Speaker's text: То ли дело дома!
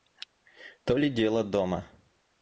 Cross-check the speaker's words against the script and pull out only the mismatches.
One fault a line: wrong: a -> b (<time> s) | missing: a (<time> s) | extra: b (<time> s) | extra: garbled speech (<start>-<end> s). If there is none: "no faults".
no faults